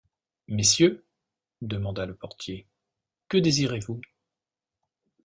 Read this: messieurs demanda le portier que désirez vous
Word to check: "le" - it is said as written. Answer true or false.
true